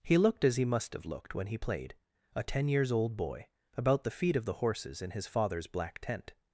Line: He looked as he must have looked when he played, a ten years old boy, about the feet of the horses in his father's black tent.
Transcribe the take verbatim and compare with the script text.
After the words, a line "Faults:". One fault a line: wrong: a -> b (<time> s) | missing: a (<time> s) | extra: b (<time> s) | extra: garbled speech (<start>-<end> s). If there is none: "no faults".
He looked as he must have looked when he played, a ten years old boy, about the feet of the horses in his father's black tent.
Faults:
no faults